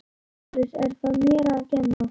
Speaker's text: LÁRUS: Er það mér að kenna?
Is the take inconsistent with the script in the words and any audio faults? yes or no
yes